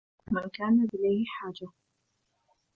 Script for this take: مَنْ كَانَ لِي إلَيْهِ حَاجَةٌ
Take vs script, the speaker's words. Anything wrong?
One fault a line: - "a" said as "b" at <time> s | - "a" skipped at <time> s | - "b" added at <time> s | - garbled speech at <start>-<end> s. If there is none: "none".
- "لِي" skipped at 0.9 s